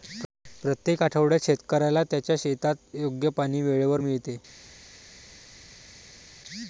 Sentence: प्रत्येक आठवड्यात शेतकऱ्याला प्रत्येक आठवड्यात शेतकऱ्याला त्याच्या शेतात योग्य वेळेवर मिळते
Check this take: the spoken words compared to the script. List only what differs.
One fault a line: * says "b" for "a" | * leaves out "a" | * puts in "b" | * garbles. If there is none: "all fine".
* leaves out "प्रत्येक आठवड्यात शेतकऱ्याला"
* puts in "पाणी"